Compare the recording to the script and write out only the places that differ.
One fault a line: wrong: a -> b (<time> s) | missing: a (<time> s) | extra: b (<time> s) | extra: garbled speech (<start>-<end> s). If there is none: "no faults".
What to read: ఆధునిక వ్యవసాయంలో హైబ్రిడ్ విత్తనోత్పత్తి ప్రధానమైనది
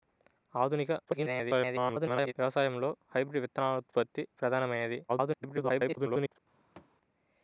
extra: garbled speech (1.0-2.3 s)
extra: garbled speech (5.1-6.4 s)